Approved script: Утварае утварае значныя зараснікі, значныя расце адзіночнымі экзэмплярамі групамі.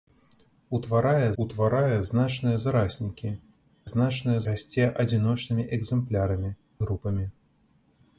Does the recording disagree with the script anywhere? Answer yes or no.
no